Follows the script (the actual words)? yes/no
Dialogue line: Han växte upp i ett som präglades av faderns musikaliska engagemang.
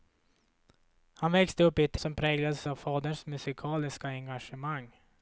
yes